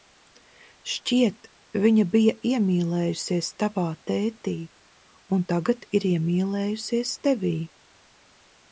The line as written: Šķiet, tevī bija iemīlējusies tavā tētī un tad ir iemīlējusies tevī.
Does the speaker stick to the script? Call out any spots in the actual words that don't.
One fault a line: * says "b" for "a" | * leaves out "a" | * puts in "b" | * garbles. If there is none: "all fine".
* says "viņa" for "tevī"
* says "tagad" for "tad"